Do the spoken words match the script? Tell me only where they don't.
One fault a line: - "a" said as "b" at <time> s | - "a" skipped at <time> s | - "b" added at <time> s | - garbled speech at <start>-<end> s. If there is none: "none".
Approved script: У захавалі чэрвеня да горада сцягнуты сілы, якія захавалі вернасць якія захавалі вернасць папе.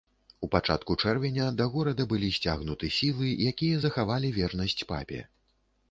- "захавалі" said as "пачатку" at 0.5 s
- "былі" added at 2.1 s
- "якія захавалі вернасць" skipped at 4.8 s